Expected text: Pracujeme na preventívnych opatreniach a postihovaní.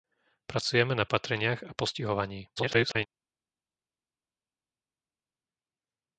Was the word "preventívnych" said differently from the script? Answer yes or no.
yes